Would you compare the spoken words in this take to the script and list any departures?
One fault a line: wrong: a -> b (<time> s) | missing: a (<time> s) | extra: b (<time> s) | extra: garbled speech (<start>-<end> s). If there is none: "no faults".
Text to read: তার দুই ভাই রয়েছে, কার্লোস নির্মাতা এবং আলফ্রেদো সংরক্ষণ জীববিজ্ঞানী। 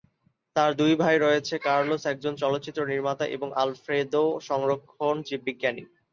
extra: একজন চলচ্চিত্র (2.0 s)